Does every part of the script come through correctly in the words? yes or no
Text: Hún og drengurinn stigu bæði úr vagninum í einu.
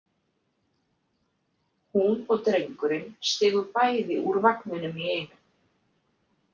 yes